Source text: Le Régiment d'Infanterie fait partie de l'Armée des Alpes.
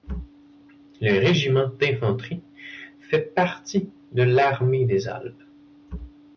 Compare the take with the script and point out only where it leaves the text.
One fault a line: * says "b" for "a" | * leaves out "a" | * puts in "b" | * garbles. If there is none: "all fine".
all fine